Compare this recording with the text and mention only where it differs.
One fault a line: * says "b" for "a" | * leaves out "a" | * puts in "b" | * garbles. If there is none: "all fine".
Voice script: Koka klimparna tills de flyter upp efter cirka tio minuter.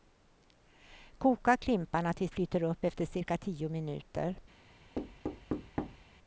* leaves out "de"